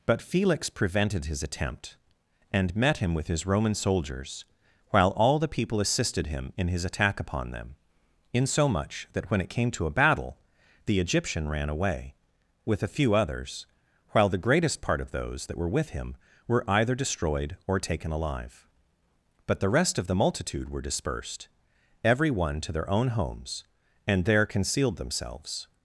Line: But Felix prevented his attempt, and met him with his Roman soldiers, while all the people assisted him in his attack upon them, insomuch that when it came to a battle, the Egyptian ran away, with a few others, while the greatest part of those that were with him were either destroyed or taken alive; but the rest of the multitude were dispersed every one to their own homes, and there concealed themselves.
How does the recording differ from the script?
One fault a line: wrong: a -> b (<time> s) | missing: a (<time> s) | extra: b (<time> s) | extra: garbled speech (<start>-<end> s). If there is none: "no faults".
no faults